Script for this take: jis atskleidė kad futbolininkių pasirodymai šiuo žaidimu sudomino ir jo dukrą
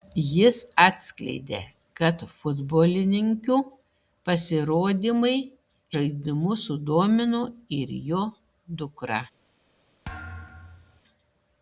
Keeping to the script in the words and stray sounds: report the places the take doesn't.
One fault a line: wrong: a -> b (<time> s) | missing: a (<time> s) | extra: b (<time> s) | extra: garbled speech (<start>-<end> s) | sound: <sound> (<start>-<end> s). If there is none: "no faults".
missing: šiuo (5.3 s)
sound: thud (10.0-11.0 s)